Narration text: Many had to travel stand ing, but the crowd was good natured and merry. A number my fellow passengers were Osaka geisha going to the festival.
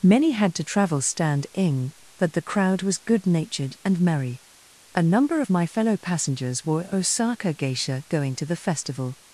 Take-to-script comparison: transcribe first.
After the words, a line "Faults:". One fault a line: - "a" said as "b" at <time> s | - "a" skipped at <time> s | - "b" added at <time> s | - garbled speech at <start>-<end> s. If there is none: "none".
Many had to travel stand ing, but the crowd was good natured and merry. A number of my fellow passengers were Osaka geisha going to the festival.
Faults:
- "of" added at 5.4 s